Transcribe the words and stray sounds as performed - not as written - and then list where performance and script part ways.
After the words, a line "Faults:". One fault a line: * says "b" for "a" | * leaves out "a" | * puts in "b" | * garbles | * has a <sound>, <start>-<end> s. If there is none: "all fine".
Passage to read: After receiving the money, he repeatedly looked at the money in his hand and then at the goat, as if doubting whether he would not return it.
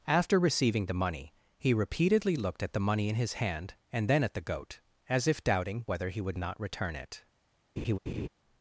After receiving the money, he repeatedly looked at the money in his hand and then at the goat, as if doubting whether he would not return it.
Faults:
* has a laugh, 7.8-8.3 s